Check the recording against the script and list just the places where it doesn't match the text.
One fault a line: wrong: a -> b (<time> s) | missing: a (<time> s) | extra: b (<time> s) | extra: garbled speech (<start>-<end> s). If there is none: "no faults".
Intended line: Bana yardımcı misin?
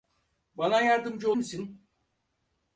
no faults